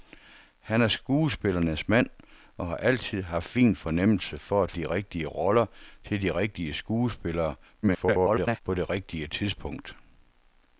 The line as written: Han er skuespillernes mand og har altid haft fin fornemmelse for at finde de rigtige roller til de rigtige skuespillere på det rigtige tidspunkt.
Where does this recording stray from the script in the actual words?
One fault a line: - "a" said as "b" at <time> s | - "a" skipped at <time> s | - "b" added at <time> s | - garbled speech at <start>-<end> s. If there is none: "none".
- "finde" skipped at 4.7 s
- garbled speech at 7.8-8.6 s